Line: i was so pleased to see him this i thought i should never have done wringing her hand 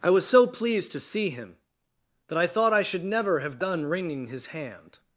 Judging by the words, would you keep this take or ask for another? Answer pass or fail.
fail